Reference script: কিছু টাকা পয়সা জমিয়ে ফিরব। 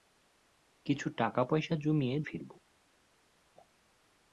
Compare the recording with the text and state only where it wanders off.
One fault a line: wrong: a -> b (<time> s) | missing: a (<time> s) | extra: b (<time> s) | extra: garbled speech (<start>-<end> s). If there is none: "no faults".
no faults